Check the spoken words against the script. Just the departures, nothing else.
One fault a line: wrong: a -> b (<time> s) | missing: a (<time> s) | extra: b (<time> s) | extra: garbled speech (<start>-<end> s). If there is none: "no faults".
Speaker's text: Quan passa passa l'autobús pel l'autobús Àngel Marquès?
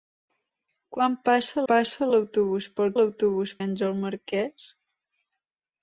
no faults